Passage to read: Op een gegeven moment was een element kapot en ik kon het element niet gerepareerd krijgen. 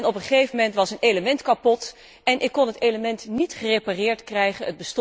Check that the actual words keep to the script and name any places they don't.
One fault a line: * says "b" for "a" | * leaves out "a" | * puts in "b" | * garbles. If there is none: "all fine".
all fine